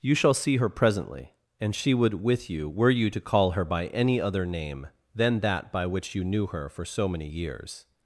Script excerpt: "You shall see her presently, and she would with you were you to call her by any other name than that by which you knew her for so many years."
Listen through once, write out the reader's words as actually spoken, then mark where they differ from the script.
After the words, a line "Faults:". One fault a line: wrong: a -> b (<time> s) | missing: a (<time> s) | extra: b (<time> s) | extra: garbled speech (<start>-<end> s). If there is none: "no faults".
"You shall see her presently, and she would with you were you to call her by any other name than that by which you knew her for so many years."
Faults:
no faults